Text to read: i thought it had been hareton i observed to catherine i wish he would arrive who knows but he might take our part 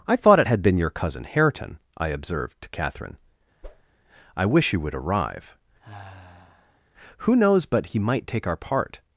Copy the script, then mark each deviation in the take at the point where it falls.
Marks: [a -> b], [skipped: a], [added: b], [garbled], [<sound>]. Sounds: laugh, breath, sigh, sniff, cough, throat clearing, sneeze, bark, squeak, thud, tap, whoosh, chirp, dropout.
i thought it had been [added: your cousin] hareton i observed to catherine [whoosh] i wish he would arrive [sigh] who knows but he might take our part